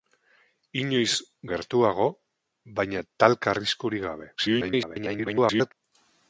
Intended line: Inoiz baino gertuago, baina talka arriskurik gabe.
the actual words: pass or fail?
fail